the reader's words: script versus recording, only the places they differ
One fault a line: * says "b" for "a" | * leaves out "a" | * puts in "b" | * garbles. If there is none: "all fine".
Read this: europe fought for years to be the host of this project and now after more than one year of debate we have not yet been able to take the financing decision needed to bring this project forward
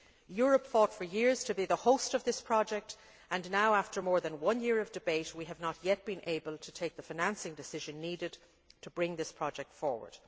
all fine